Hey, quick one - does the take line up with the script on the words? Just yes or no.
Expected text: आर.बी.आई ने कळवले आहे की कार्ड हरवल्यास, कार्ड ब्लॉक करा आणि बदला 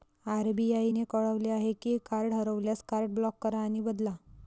yes